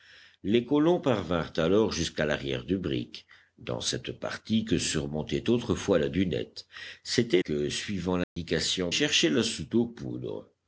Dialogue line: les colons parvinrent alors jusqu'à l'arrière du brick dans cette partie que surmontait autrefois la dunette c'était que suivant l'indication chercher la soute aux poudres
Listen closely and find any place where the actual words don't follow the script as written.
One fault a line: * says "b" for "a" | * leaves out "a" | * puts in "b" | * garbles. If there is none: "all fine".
all fine